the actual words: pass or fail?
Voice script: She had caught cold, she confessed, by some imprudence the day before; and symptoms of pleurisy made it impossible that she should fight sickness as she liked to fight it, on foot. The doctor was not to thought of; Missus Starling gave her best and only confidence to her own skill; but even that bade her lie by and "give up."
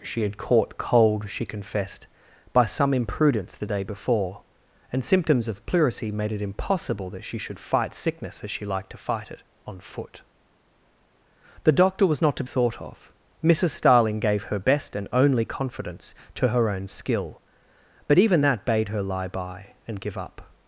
pass